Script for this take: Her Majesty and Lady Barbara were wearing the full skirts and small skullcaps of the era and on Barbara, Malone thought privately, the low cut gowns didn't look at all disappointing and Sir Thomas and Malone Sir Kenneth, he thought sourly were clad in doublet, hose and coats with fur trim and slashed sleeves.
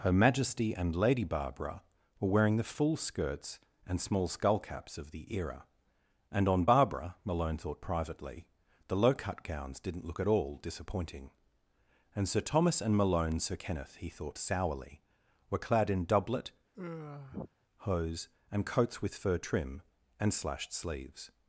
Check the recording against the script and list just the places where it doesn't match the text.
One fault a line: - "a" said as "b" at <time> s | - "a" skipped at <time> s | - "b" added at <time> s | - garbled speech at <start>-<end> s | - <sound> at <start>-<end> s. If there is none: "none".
- sigh at 16.7-17.5 s